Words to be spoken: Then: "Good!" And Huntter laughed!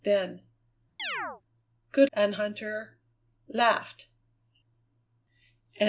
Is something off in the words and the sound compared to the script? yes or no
yes